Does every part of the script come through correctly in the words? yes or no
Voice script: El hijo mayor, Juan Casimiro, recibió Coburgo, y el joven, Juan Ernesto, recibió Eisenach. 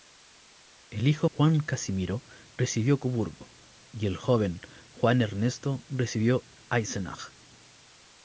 no